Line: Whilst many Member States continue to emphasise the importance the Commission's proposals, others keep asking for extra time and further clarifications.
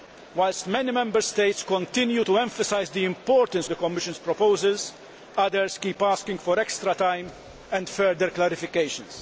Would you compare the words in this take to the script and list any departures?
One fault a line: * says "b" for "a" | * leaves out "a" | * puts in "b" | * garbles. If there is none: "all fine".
all fine